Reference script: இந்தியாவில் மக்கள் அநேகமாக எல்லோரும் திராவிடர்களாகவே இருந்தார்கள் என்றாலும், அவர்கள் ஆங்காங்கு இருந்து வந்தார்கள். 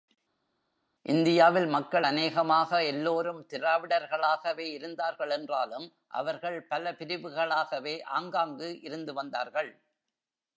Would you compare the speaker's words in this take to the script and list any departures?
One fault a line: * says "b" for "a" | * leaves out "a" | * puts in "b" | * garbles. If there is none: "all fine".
* puts in "பல பிரிவுகளாகவே"